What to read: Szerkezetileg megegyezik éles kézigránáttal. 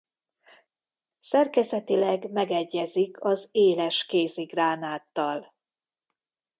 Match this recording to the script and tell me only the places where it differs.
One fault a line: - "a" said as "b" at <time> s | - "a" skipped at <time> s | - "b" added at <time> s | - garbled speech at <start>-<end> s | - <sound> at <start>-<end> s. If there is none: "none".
- "az" added at 3.2 s